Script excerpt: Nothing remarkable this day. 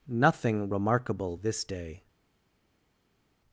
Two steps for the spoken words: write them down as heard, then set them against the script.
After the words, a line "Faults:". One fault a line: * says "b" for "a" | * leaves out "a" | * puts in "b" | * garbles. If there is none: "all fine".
Nothing remarkable this day.
Faults:
all fine